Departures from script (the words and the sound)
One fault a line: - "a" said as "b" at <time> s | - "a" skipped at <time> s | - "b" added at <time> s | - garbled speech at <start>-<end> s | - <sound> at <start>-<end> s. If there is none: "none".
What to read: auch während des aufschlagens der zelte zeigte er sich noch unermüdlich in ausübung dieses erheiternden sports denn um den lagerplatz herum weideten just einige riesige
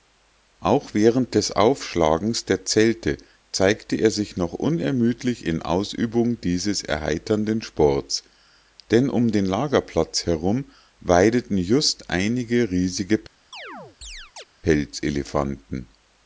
- chirp at 13.5-14.4 s